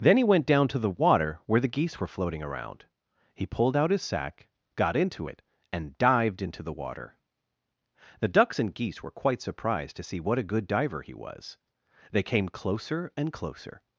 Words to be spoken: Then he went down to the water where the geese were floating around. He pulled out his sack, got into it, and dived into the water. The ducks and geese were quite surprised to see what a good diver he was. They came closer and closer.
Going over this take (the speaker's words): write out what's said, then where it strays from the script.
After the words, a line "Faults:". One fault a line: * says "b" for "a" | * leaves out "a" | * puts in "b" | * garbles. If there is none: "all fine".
Then he went down to the water where the geese were floating around. He pulled out his sack, got into it, and dived into the water. The ducks and geese were quite surprised to see what a good diver he was. They came closer and closer.
Faults:
all fine